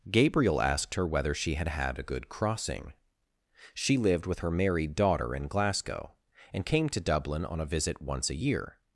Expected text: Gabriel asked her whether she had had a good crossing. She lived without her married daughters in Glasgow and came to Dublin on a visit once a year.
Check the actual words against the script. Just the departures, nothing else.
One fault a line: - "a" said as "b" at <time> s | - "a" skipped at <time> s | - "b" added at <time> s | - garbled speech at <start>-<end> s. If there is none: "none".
- "without" said as "with" at 4.2 s
- "daughters" said as "daughter" at 5.0 s